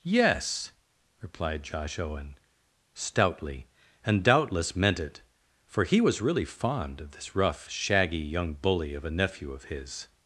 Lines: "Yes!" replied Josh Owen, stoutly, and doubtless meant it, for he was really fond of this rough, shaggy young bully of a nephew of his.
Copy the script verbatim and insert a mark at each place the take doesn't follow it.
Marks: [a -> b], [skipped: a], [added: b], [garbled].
"Yes!" replied Josh Owen, stoutly, and doubtless meant it, for he was really fond of this rough, shaggy young bully of a nephew of his.